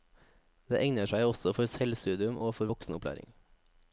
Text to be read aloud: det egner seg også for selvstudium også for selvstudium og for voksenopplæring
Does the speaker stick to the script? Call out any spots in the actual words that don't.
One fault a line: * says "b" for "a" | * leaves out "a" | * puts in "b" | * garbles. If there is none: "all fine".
* leaves out "også for selvstudium"